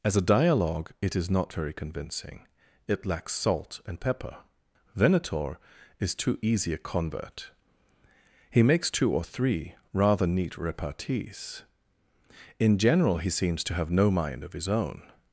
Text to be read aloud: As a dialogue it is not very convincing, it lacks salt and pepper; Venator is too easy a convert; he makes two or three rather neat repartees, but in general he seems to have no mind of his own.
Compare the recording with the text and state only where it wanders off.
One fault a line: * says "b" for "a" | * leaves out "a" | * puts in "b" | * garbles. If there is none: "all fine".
* leaves out "but"